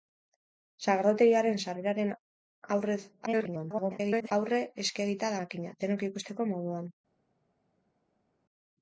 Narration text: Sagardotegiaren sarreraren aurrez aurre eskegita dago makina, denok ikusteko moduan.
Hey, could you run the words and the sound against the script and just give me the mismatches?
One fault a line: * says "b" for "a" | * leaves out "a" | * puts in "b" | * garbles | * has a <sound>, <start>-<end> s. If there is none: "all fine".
* garbles
* leaves out "dago"